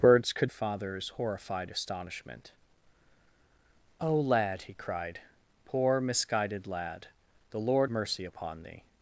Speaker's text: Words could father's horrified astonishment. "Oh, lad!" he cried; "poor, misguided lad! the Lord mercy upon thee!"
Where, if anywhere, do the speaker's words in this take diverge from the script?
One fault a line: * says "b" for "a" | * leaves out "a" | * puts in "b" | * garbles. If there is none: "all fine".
all fine